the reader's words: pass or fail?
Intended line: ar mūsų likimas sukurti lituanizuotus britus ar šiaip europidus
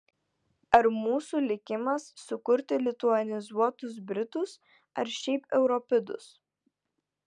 pass